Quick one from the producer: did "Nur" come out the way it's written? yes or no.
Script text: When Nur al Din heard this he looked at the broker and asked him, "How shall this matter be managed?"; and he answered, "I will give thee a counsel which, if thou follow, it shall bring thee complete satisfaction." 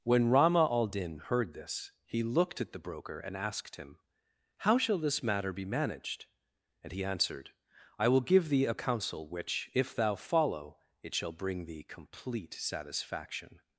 no